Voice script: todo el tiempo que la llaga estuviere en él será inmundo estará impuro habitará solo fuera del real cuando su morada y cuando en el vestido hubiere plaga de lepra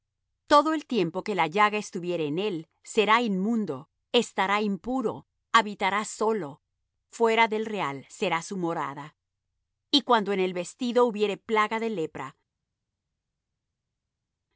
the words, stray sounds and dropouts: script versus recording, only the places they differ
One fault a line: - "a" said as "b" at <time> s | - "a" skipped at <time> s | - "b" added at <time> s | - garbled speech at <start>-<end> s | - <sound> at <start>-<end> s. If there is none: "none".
- "cuando" said as "será" at 8.1 s